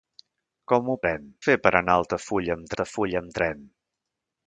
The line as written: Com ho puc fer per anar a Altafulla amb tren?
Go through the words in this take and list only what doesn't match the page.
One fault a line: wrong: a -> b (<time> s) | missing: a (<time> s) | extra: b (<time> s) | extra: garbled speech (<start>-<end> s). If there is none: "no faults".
wrong: puc -> tren (1.0 s)
extra: Altafulla amb (2.7 s)